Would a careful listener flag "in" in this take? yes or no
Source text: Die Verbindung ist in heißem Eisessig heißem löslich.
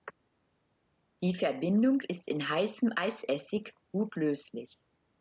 no